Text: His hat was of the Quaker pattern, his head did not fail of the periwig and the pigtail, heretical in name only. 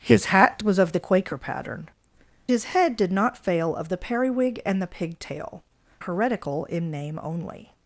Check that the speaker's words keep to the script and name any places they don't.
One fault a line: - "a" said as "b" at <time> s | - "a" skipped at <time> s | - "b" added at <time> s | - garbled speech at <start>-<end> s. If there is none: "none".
none